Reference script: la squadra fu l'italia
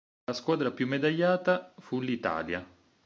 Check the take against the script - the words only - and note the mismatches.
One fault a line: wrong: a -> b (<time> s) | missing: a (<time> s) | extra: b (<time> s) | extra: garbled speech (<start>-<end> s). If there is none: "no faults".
extra: più medagliata (0.7 s)